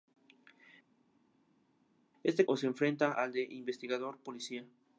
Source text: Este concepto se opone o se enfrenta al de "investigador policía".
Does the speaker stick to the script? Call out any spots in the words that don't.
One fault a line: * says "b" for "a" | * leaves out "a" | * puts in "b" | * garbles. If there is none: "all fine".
* leaves out "concepto se opone"